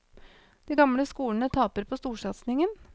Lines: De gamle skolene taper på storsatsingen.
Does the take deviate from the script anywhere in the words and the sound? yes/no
no